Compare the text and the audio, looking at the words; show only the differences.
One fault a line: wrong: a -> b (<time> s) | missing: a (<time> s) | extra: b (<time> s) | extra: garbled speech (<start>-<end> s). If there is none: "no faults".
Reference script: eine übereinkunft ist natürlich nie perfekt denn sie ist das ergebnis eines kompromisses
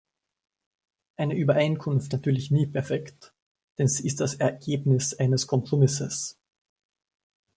missing: ist (2.1 s)